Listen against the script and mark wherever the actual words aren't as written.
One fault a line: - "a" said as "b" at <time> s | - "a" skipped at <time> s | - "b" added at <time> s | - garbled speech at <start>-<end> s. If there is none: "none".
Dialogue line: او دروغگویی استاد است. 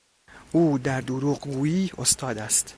- "در" added at 0.8 s